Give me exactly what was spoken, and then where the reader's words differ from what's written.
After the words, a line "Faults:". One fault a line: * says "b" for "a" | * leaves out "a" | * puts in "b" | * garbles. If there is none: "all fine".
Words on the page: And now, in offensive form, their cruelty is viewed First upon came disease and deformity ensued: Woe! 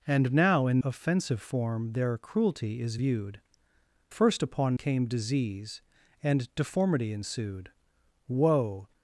And now, in offensive form, their cruelty is viewed First upon came disease and deformity ensued: Woe!
Faults:
all fine